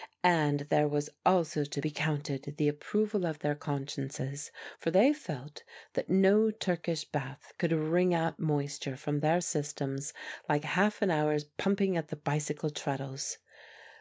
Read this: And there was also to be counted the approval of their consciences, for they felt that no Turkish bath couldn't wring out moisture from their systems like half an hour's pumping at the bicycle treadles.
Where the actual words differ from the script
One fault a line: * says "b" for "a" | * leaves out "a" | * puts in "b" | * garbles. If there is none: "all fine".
* says "could" for "couldn't"